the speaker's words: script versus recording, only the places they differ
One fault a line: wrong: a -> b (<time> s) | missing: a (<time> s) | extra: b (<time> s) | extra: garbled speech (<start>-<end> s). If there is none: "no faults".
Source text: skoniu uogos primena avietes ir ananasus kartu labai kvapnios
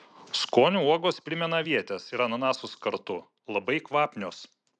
no faults